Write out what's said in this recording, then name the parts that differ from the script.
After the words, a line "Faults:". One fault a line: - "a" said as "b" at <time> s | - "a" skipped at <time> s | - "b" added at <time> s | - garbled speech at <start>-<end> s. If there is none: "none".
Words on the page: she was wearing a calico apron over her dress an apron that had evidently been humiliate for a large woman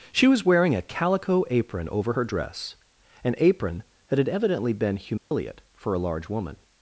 she was wearing a calico apron over her dress an apron that had evidently been humiliate for a large woman
Faults:
none